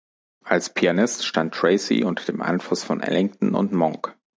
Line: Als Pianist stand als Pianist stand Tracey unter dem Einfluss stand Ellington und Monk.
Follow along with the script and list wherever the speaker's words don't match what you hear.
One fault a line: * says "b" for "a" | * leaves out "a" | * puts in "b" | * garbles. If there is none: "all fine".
* leaves out "als Pianist stand"
* says "von" for "stand"